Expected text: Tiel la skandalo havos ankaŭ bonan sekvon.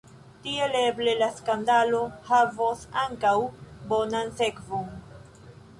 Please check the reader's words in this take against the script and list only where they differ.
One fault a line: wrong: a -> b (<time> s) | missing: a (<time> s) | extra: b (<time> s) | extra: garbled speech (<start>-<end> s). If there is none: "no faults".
extra: eble (0.8 s)